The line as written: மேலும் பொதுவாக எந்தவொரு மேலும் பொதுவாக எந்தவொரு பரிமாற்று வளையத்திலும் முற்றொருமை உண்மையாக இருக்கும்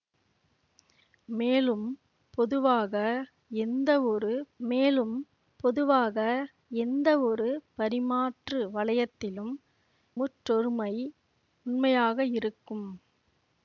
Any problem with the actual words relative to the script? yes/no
no